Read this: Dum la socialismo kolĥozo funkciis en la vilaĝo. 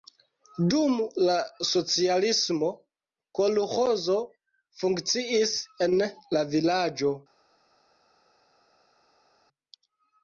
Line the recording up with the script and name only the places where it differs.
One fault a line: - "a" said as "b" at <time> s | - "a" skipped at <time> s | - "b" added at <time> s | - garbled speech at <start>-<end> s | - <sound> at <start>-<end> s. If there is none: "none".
none